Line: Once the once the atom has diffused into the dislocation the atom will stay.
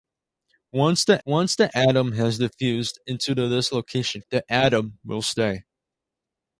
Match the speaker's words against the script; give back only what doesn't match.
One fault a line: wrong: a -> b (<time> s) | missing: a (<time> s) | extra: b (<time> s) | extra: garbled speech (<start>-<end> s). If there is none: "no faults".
no faults